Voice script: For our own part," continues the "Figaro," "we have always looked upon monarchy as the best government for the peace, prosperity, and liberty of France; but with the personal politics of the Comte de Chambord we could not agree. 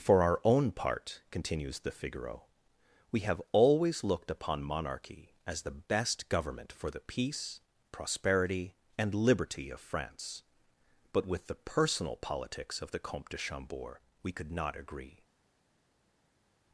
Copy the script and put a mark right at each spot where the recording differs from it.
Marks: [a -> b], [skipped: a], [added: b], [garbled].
For our own part," continues the "Figaro," "we have always looked upon monarchy as the best government for the peace, prosperity, and liberty of France; but with the personal politics of the Comte de Chambord we could not agree.